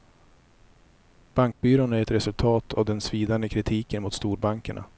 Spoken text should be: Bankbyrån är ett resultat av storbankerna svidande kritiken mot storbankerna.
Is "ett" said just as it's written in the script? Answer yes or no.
yes